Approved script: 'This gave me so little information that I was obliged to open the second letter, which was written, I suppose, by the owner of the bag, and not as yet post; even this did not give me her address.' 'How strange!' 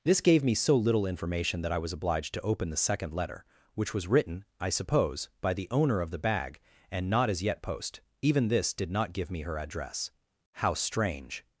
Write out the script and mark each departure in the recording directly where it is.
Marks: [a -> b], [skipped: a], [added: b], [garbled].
'This gave me so little information that I was obliged to open the second letter, which was written, I suppose, by the owner of the bag, and not as yet post; even this did not give me her address.' 'How strange!'